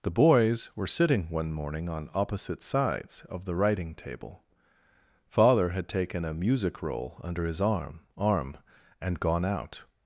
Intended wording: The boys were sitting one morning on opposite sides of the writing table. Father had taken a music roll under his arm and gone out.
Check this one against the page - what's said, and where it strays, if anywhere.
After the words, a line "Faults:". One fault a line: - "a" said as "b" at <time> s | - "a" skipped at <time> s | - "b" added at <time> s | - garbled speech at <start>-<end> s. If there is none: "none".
The boys were sitting one morning on opposite sides of the writing table. Father had taken a music roll under his arm arm and gone out.
Faults:
- "arm" added at 8.2 s